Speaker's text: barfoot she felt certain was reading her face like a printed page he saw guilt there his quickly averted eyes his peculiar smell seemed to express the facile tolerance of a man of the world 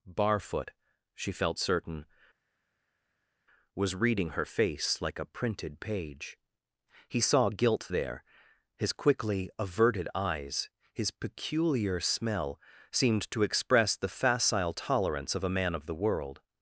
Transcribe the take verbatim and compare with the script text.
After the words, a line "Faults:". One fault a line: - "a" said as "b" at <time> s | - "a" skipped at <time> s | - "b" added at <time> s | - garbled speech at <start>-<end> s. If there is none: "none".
barfoot she felt certain was reading her face like a printed page he saw guilt there his quickly averted eyes his peculiar smell seemed to express the facile tolerance of a man of the world
Faults:
none